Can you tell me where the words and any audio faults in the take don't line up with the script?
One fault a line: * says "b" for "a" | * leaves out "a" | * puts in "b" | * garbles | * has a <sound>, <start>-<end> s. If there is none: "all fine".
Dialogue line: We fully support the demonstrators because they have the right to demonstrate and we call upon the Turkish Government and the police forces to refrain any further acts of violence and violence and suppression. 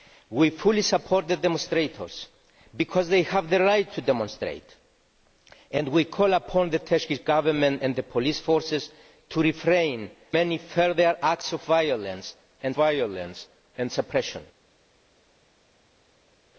all fine